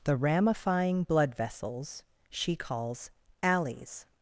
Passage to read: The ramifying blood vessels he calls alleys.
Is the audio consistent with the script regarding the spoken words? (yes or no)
no